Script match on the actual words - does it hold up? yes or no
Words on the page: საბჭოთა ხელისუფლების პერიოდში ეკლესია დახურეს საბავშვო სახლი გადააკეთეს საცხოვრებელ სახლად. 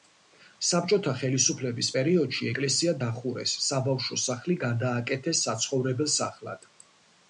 yes